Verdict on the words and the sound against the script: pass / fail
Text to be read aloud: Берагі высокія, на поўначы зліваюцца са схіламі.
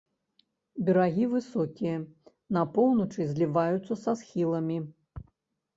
pass